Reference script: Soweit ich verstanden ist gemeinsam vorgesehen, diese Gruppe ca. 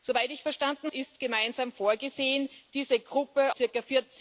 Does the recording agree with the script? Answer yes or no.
yes